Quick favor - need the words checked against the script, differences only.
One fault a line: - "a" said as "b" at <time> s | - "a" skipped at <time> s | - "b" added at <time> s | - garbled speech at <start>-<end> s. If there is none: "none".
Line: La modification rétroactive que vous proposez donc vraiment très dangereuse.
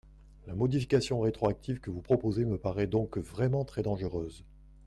- "me paraît" added at 2.5 s